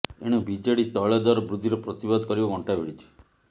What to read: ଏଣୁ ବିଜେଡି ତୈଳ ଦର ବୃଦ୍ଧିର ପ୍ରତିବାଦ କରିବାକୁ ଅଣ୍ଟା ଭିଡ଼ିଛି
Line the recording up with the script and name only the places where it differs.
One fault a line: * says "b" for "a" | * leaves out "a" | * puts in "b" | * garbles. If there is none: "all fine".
all fine